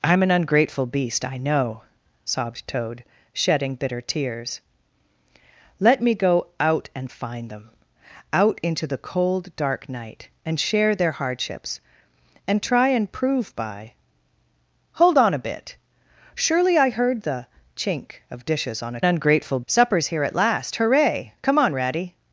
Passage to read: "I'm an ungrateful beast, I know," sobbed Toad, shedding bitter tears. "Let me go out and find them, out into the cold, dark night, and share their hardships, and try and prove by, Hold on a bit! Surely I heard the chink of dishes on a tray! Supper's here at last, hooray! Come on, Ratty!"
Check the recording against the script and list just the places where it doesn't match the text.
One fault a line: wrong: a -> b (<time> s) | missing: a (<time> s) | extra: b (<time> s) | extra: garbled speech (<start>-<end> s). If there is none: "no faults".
wrong: tray -> ungrateful (19.0 s)